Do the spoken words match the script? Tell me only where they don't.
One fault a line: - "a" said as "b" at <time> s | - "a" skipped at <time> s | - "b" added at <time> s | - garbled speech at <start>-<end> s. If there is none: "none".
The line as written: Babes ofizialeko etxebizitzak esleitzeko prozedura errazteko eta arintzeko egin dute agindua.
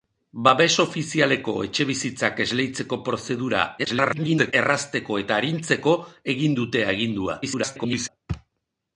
- garbled speech at 3.8-4.5 s
- garbled speech at 7.4-8.1 s